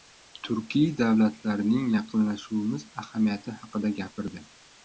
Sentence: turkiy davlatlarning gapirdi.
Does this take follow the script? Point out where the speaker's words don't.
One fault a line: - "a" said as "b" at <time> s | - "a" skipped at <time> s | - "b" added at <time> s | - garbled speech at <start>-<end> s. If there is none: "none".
- "yaqinlashuvimiz ahamiyati haqida" added at 2.0 s